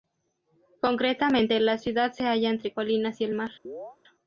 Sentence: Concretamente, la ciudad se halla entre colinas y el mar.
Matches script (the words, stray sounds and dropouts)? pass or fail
fail